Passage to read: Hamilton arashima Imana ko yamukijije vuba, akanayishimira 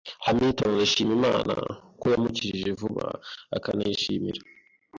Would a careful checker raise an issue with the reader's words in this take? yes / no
no